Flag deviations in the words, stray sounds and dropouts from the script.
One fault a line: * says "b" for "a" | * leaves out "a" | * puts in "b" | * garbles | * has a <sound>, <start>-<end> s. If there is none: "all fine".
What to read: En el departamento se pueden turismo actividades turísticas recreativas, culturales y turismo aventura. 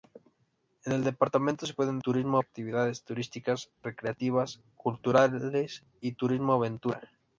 all fine